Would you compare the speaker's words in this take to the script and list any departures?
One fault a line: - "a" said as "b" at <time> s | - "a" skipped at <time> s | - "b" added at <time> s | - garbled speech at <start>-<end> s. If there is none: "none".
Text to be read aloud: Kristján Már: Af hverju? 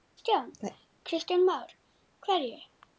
- "Af" skipped at 1.7 s